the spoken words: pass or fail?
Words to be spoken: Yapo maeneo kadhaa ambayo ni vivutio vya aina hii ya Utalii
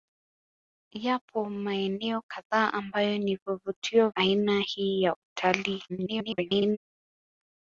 fail